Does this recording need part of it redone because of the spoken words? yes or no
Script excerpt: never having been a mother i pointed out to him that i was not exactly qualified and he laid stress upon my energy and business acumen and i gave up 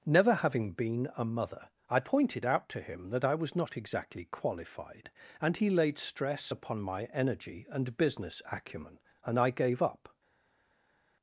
no